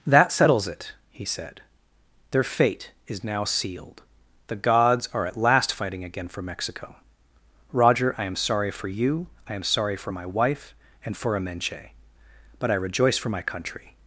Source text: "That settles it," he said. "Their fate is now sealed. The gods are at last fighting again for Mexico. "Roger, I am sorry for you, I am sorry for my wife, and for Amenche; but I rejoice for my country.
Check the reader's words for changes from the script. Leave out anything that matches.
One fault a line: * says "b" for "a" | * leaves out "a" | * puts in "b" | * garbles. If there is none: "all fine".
all fine